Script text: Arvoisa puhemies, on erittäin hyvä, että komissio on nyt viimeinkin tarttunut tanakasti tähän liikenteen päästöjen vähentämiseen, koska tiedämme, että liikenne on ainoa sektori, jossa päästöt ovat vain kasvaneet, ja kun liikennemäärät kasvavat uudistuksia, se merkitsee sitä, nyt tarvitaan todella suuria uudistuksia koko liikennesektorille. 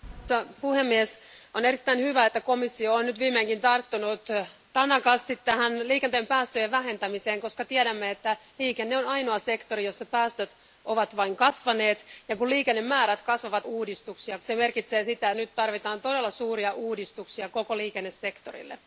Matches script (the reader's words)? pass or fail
pass